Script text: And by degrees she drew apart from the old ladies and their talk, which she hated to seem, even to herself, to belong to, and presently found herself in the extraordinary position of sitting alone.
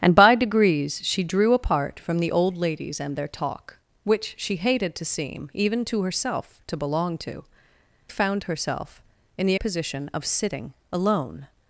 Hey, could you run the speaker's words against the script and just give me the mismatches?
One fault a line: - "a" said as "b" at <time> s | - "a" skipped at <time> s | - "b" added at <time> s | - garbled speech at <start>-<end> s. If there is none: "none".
- "and presently" skipped at 7.4 s
- "extraordinary" skipped at 9.5 s